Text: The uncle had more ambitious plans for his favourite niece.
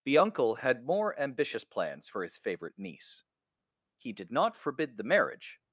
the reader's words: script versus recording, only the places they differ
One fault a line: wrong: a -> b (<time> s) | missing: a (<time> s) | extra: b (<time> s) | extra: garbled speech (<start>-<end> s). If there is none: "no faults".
extra: He did not forbid the marriage (4.0 s)